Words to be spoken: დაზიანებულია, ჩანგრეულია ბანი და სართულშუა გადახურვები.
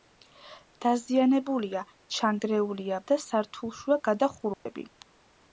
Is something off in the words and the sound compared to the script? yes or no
yes